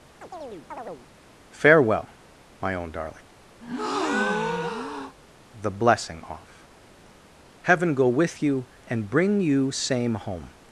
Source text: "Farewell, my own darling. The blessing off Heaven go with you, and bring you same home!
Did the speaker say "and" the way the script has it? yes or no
yes